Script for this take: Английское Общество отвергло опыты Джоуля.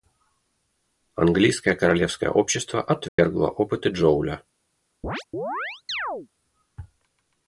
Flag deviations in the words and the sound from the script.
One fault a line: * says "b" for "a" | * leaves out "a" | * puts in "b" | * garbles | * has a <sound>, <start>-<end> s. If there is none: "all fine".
* puts in "Королевское"
* has a dropout, 3.1-3.2 s
* has a chirp, 5.0-6.3 s